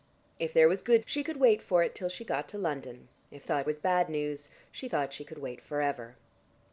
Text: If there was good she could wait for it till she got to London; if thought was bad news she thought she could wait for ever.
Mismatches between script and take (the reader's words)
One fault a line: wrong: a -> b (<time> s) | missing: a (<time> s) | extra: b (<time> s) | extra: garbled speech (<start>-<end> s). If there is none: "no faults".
no faults